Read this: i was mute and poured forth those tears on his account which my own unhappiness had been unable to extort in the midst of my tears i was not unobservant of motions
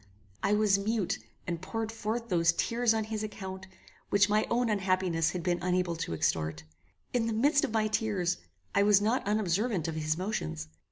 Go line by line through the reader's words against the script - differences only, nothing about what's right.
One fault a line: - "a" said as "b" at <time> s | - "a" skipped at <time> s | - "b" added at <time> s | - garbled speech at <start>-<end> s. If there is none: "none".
- "his" added at 10.0 s